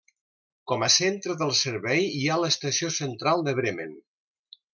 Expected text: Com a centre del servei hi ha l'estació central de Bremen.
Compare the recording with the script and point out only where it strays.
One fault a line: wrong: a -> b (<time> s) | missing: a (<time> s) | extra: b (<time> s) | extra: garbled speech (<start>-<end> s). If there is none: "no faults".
no faults